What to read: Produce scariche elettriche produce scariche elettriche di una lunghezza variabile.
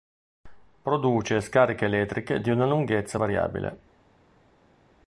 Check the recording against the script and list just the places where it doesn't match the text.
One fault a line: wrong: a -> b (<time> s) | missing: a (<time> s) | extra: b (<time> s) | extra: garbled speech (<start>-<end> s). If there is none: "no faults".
missing: produce scariche elettriche (2.4 s)